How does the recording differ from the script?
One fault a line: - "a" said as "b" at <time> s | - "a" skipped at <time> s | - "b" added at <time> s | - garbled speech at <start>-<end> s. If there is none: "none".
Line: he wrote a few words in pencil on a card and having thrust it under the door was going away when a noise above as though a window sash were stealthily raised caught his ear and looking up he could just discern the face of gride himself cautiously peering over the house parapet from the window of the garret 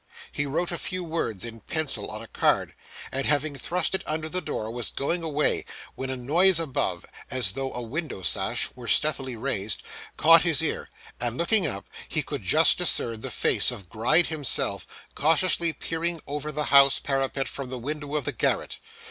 none